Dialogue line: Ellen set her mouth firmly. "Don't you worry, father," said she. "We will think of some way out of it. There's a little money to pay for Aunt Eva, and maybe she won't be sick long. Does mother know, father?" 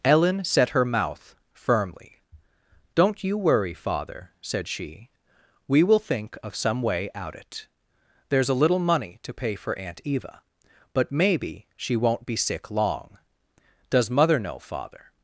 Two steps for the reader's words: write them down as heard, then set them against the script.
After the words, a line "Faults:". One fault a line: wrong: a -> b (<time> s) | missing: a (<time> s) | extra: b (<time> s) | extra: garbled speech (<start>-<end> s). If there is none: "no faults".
Ellen set her mouth firmly. "Don't you worry, father," said she. "We will think of some way out it. There's a little money to pay for Aunt Eva, but maybe she won't be sick long. Does mother know, father?"
Faults:
missing: of (7.3 s)
wrong: and -> but (10.9 s)